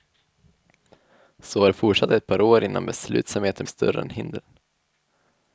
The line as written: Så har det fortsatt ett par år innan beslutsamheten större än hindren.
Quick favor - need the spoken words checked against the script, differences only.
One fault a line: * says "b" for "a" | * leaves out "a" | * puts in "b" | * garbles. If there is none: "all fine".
all fine